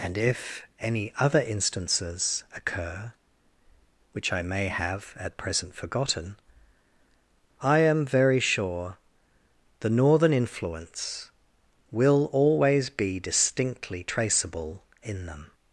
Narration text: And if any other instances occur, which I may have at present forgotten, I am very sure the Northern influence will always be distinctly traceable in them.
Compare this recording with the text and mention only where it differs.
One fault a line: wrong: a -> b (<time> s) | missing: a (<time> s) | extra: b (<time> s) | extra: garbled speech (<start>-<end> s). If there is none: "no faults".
no faults